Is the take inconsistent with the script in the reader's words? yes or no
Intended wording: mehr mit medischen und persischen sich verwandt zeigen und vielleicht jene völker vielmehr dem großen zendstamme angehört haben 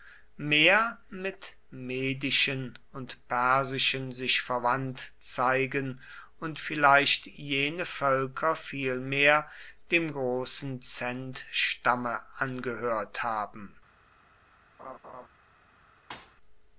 no